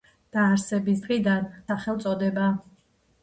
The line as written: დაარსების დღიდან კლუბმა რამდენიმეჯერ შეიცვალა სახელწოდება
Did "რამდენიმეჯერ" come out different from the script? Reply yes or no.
yes